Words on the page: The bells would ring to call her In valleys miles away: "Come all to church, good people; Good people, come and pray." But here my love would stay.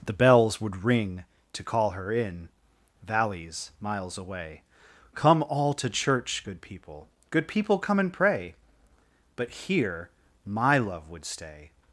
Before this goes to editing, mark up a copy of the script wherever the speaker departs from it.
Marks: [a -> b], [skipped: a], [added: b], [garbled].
The bells would ring to call her In valleys miles away: "Come all to church, good people; Good people, come and pray." But here my love would stay.